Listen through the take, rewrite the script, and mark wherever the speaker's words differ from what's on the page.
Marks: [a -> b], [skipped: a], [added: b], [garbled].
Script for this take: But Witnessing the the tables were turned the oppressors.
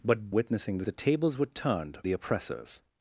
But Witnessing the the tables were turned the oppressors.